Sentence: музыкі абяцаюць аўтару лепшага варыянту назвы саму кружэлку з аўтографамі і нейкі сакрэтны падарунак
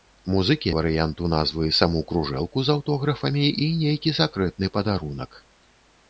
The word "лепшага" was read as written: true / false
false